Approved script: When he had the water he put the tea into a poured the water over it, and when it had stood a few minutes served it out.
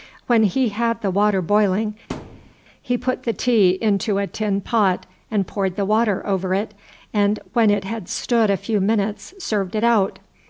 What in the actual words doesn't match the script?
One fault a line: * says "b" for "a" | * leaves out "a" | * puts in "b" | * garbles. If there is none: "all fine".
* puts in "boiling"
* puts in "tin pot and"